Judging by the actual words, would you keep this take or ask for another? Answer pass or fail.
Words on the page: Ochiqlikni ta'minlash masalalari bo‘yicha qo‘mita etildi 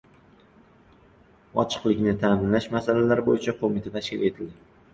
fail